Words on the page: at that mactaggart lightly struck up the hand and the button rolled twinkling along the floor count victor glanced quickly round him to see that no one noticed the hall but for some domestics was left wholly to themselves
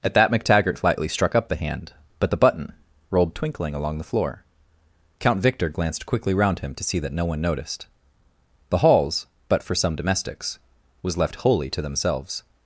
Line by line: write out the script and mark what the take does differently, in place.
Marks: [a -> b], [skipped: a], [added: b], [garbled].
at that mactaggart lightly struck up the hand [and -> but] the button rolled twinkling along the floor count victor glanced quickly round him to see that no one noticed the [hall -> halls] but for some domestics was left wholly to themselves